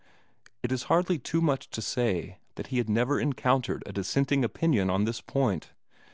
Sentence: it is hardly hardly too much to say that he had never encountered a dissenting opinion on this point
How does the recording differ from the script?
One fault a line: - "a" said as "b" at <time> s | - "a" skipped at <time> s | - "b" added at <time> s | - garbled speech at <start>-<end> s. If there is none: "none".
- "hardly" skipped at 1.2 s